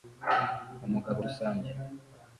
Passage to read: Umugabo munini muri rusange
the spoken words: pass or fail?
fail